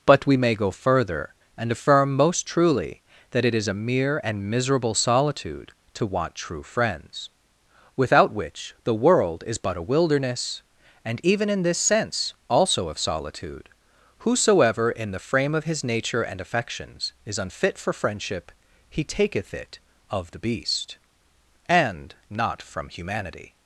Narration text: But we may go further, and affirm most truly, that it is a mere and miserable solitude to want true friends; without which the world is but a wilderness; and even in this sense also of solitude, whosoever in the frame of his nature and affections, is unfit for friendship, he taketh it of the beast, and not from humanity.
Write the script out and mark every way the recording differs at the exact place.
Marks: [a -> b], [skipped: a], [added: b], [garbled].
But we may go further, and affirm most truly, that it is a mere and miserable solitude to want true friends; without which the world is but a wilderness; and even in this sense also of solitude, whosoever in the frame of his nature and affections, is unfit for friendship, he taketh it of the beast, and not from humanity.